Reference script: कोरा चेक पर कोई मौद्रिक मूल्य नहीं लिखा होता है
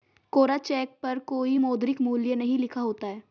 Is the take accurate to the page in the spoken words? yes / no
yes